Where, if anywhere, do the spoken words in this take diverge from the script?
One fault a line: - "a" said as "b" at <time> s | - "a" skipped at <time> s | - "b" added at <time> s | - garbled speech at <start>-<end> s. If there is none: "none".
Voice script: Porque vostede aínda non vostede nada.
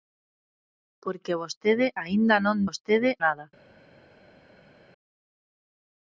none